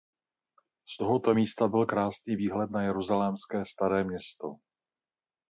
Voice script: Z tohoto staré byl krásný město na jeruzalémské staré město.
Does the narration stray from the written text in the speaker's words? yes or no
yes